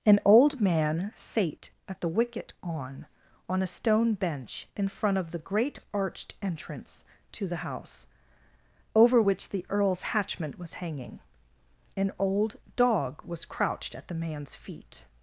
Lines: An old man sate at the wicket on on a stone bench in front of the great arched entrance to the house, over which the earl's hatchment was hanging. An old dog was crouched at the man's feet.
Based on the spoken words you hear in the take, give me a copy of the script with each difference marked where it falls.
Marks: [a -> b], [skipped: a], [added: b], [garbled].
An old man sate at the wicket on on a stone bench in front of the great arched entrance to the house, over which the earl's hatchment was hanging. An old dog was crouched at the man's feet.